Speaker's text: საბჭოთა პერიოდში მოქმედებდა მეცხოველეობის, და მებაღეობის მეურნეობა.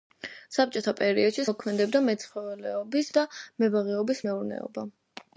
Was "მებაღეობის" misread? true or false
false